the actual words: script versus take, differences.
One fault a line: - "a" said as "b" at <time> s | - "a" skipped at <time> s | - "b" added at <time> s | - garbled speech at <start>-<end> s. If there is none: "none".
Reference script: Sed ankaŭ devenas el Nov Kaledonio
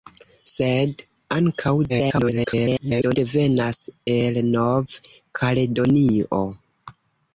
- garbled speech at 1.9-3.2 s